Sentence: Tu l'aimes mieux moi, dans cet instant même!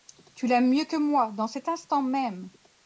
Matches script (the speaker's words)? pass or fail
fail